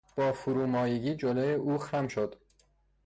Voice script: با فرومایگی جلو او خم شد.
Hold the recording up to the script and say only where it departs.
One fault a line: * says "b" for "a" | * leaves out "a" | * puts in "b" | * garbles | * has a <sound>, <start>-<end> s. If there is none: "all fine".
all fine